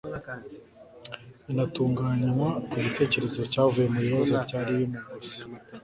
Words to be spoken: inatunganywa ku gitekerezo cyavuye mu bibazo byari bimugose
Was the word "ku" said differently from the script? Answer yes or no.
no